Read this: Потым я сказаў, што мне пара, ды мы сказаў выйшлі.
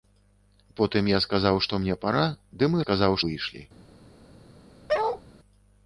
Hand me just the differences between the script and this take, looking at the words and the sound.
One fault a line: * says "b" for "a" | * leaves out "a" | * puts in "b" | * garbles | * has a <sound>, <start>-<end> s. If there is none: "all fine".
* has a bark, 4.9-5.2 s